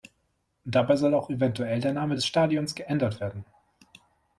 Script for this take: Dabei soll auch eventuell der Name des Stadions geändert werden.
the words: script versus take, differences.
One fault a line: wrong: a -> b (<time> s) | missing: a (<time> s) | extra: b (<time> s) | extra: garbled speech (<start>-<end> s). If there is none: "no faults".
no faults